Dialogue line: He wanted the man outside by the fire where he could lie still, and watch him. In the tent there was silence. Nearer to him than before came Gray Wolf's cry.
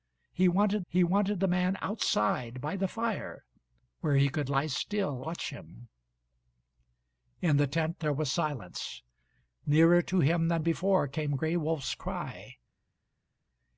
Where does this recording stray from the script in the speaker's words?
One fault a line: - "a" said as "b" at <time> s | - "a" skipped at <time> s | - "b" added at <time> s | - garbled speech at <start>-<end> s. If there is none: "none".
- "he wanted" added at 0.9 s
- "and" skipped at 5.2 s